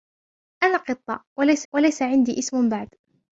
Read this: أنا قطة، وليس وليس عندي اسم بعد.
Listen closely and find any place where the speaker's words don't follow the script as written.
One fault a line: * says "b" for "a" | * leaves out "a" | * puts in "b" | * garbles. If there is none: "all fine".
all fine